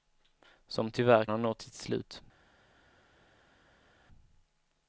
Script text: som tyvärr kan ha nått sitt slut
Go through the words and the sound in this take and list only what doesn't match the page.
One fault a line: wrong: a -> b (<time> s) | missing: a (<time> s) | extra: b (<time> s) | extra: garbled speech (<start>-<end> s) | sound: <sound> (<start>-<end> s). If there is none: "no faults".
missing: kan (1.2 s)